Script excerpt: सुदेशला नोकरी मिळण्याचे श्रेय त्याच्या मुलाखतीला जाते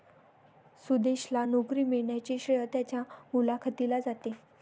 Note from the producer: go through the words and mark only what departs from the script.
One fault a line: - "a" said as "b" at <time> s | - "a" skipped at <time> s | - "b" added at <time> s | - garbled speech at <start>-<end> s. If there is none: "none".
none